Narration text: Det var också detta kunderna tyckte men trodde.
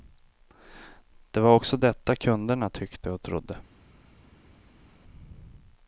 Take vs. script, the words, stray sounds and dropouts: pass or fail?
fail